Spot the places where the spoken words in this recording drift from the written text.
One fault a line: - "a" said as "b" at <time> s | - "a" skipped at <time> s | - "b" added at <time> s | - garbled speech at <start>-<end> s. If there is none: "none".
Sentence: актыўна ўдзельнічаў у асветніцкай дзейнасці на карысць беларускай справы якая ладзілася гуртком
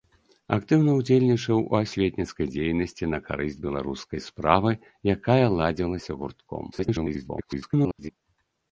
- garbled speech at 6.7-8.1 s